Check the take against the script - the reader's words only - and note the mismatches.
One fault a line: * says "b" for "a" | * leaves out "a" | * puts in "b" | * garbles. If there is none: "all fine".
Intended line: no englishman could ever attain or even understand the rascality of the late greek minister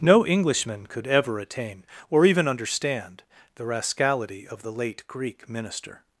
all fine